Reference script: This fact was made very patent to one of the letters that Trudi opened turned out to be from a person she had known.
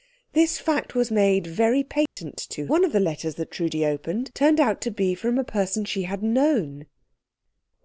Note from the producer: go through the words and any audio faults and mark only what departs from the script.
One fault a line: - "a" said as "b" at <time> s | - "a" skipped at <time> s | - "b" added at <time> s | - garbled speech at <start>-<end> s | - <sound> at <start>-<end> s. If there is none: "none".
- dropout at 2.1-2.2 s